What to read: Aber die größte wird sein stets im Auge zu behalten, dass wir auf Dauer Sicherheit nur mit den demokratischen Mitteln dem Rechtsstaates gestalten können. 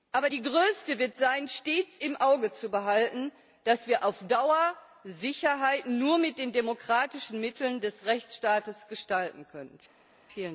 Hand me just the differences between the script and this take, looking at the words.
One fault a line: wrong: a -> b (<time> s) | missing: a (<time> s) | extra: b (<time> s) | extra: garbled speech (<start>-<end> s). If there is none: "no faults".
wrong: dem -> des (7.8 s)